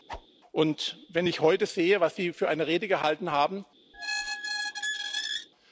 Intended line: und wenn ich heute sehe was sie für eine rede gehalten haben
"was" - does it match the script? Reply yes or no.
yes